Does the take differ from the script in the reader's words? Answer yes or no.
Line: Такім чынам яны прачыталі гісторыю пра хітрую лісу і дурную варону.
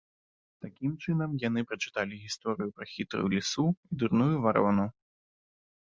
no